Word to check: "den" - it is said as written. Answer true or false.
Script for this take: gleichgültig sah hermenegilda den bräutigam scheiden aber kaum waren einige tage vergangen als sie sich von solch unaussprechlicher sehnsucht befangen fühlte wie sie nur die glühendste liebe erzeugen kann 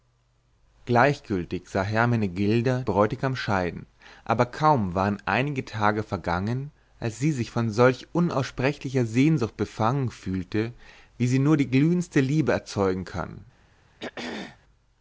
false